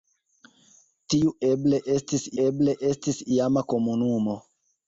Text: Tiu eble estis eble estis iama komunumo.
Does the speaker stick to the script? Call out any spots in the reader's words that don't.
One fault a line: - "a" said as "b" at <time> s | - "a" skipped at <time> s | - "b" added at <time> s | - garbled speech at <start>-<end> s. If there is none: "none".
none